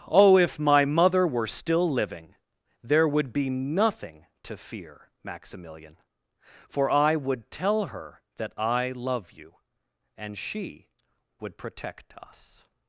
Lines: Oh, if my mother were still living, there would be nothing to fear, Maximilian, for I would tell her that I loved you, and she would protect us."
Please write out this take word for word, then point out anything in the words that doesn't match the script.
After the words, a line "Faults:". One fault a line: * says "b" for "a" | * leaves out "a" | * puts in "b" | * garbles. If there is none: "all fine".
Oh, if my mother were still living, there would be nothing to fear, Maximilian, for I would tell her that I love you, and she would protect us."
Faults:
* says "love" for "loved"